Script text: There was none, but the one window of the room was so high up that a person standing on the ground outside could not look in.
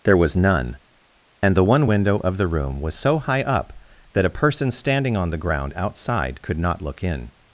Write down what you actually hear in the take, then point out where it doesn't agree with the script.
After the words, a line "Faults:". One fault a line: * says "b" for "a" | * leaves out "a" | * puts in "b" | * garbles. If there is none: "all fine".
There was none, and the one window of the room was so high up that a person standing on the ground outside could not look in.
Faults:
* says "and" for "but"